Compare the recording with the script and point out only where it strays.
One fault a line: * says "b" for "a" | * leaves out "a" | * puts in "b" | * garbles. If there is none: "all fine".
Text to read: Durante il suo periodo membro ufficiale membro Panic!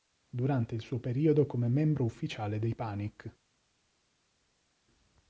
* puts in "come"
* says "dei" for "membro"